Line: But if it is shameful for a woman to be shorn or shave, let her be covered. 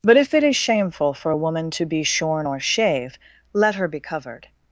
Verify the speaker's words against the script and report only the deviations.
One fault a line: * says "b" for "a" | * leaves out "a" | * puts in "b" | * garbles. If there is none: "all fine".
all fine